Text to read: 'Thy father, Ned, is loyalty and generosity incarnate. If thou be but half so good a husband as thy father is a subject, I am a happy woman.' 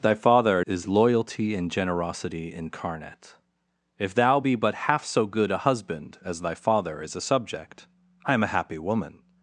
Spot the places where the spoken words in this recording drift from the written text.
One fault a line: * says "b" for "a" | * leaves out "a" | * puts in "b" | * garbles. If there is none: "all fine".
* leaves out "Ned"